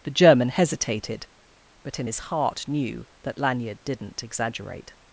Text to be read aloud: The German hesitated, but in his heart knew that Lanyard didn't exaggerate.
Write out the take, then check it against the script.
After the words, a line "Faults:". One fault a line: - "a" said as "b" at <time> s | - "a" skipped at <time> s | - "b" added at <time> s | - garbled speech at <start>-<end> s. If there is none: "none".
The German hesitated, but in his heart knew that Lanyard didn't exaggerate.
Faults:
none